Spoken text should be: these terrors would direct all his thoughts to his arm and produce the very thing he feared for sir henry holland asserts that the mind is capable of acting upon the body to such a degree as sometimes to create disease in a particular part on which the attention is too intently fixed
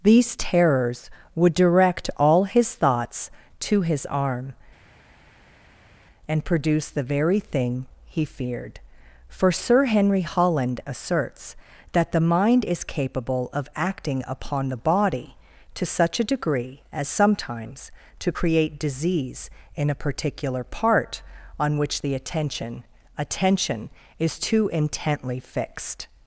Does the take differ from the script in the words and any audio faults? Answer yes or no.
yes